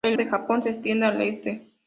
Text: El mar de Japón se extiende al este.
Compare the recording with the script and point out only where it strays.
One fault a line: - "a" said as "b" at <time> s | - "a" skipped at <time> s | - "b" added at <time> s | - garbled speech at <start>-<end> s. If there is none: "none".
- "mar" skipped at 0.2 s